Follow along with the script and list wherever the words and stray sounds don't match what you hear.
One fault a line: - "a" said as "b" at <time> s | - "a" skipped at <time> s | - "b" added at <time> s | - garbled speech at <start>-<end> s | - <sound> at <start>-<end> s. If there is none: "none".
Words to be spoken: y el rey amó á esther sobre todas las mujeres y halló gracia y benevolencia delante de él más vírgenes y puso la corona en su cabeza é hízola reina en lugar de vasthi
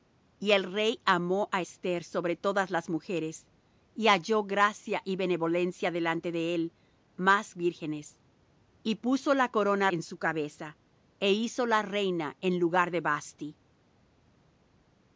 none